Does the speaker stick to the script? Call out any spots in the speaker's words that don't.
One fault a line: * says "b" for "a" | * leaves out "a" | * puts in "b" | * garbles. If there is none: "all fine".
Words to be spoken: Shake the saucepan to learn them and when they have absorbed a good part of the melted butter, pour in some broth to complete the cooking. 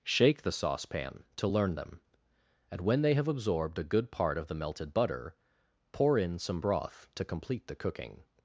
all fine